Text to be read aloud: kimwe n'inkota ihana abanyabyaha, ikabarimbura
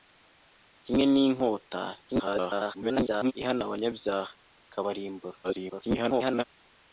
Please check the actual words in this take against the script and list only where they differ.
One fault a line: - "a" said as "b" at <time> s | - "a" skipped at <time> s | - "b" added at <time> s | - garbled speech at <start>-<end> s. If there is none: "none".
- garbled speech at 2.1-3.3 s
- garbled speech at 5.4-6.4 s